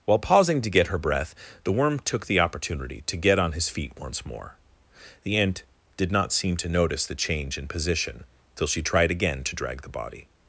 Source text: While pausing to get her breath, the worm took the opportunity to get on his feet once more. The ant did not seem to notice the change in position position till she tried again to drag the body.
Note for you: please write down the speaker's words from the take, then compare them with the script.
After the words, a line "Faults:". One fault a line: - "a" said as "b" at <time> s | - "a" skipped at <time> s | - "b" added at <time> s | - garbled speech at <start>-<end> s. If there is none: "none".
While pausing to get her breath, the worm took the opportunity to get on his feet once more. The ant did not seem to notice the change in position till she tried again to drag the body.
Faults:
- "position" skipped at 8.2 s